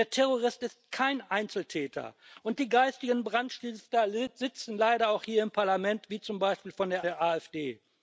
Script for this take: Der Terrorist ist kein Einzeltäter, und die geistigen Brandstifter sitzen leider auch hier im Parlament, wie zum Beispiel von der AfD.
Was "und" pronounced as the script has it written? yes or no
yes